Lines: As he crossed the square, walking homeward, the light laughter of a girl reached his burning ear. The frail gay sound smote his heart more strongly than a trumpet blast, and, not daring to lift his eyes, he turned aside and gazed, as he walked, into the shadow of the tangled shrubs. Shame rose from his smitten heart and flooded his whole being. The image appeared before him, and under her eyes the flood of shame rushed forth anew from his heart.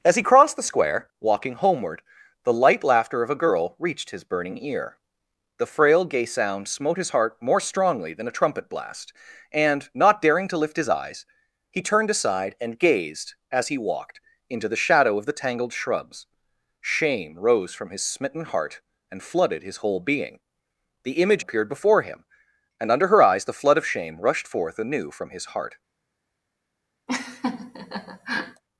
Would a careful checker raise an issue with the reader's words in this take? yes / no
no